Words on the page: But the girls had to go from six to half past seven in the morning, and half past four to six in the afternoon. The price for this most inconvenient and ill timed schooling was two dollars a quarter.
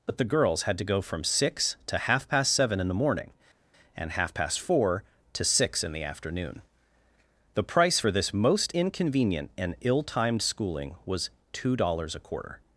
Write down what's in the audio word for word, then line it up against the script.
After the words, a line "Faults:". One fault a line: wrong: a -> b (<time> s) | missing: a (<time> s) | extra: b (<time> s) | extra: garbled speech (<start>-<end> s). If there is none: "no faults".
But the girls had to go from six to half past seven in the morning, and half past four to six in the afternoon. The price for this most inconvenient and ill timed schooling was two dollars a quarter.
Faults:
no faults